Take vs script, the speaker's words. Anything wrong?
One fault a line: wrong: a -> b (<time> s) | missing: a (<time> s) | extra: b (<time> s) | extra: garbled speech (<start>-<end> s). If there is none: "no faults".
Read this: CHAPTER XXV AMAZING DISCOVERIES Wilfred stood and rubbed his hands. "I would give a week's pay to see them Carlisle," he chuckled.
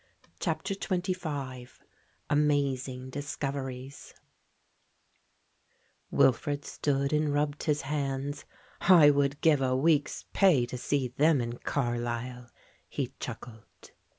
extra: in (11.4 s)